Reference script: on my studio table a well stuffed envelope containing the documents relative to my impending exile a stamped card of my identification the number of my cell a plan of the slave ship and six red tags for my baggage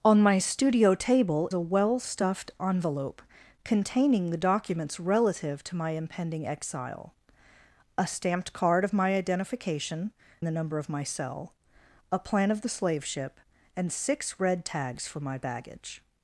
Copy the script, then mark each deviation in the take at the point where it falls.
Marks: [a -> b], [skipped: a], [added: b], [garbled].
on my studio table a well stuffed envelope containing the documents relative to my impending exile a stamped card of my identification the number of my cell a plan of the slave ship and six red tags for my baggage